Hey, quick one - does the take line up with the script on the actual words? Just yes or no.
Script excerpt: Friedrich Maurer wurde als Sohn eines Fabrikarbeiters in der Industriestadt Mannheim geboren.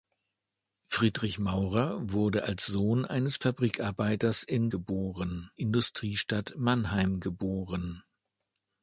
no